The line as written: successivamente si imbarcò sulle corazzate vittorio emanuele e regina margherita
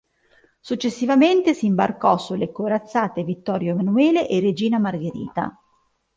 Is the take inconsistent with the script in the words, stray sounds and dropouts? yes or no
no